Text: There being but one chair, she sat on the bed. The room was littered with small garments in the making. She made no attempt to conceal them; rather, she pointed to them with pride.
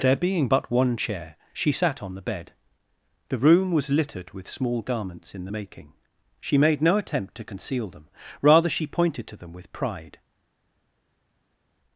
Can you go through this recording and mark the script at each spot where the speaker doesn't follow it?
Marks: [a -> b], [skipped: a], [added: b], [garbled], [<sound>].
There being but one chair, she sat on the bed. The room was littered with small garments in the making. She made no attempt to conceal them; rather, she pointed to them with pride.